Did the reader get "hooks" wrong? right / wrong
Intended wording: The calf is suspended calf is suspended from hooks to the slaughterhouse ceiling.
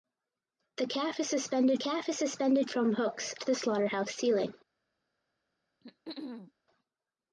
right